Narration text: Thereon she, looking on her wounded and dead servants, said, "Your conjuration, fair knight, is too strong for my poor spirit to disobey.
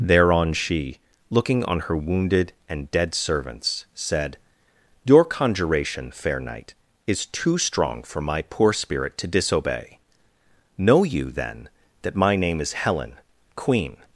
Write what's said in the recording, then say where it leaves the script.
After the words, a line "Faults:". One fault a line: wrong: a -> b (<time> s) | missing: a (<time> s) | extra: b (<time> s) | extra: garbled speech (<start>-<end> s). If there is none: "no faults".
Thereon she, looking on her wounded and dead servants, said, "Your conjuration, fair knight, is too strong for my poor spirit to disobey. Know you, then, that my name is Helen, queen
Faults:
extra: Know you then that my name is Helen queen (10.8 s)